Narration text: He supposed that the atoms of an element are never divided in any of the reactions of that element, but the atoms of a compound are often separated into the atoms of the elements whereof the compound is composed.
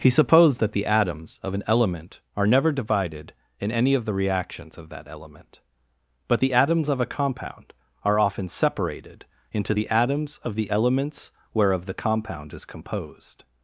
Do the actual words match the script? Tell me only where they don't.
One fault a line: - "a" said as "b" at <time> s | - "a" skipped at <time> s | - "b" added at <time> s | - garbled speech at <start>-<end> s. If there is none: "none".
none